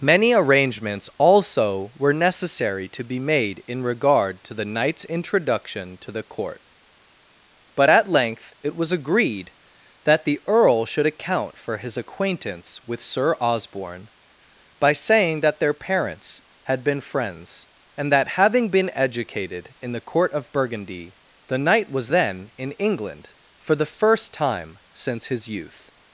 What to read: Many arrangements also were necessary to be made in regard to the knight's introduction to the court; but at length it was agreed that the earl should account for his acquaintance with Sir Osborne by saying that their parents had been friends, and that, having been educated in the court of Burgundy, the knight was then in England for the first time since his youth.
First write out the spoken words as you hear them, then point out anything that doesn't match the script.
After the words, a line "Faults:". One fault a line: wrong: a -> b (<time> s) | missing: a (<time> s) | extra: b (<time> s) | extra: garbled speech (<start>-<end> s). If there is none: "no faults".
Many arrangements also were necessary to be made in regard to the knight's introduction to the court; but at length it was agreed that the earl should account for his acquaintance with Sir Osborne by saying that their parents had been friends, and that, having been educated in the court of Burgundy, the knight was then in England for the first time since his youth.
Faults:
no faults